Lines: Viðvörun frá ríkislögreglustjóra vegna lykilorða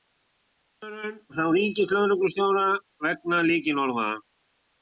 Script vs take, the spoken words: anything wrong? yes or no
no